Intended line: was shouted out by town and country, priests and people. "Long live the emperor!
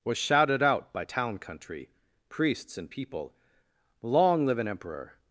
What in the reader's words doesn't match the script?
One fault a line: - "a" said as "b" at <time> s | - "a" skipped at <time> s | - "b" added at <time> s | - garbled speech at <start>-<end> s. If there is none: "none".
- "and" skipped at 1.4 s
- "the" said as "an" at 4.6 s